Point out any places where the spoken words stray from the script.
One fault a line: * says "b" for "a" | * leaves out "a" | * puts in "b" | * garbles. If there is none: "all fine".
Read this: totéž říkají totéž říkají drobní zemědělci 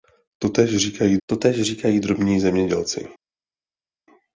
all fine